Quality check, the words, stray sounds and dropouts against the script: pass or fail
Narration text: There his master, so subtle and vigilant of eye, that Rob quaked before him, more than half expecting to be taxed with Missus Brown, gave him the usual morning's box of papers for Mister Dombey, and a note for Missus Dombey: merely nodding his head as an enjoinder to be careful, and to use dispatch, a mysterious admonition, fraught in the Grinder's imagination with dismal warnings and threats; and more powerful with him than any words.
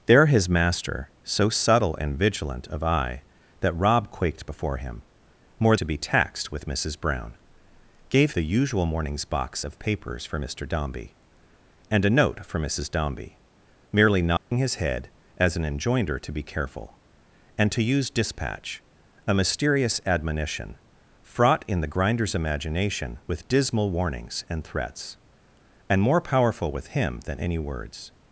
fail